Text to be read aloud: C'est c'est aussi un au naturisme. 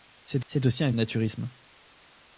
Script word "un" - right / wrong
right